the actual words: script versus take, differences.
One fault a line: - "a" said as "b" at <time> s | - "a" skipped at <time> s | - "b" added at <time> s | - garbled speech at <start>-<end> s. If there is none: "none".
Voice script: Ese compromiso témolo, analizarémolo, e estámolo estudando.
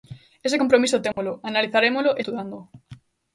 - "estámolo" skipped at 2.2 s